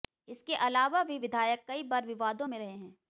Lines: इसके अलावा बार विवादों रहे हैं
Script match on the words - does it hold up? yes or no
no